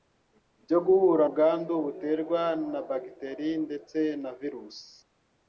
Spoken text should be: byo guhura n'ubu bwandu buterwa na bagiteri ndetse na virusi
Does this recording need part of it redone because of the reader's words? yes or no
yes